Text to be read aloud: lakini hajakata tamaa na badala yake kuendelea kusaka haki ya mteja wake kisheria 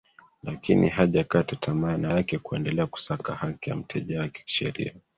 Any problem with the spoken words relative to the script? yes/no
yes